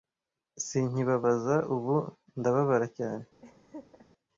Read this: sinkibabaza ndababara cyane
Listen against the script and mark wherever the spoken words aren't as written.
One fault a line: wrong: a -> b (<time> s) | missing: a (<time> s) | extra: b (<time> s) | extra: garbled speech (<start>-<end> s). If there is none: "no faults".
extra: ubu (1.8 s)